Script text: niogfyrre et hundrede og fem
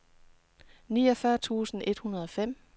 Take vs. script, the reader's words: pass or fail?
fail